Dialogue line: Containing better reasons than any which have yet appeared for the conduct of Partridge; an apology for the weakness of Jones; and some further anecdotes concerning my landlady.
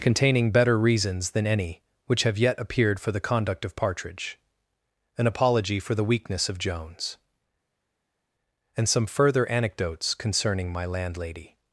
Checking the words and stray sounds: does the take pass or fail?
pass